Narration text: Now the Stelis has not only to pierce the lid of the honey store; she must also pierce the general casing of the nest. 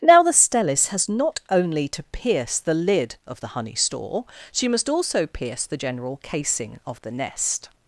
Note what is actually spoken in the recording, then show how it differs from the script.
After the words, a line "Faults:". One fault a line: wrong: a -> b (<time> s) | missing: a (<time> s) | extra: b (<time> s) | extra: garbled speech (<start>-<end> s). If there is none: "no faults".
Now the Stelis has not only to pierce the lid of the honey store; she must also pierce the general casing of the nest.
Faults:
no faults